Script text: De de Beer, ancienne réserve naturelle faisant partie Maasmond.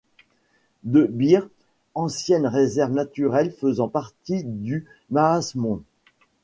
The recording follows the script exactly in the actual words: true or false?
false